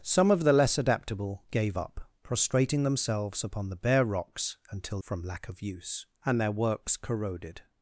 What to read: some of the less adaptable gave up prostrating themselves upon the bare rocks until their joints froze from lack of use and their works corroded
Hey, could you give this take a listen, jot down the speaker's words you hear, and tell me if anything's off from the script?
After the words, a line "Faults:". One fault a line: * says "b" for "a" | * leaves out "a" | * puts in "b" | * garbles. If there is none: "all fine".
some of the less adaptable gave up prostrating themselves upon the bare rocks until from lack of use and their works corroded
Faults:
* leaves out "their joints froze"